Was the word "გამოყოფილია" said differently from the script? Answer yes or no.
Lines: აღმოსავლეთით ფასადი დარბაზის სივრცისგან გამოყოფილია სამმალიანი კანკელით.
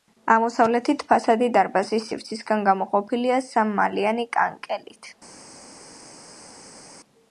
no